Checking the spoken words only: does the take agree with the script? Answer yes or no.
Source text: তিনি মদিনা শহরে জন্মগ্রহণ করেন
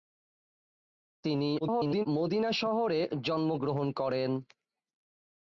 no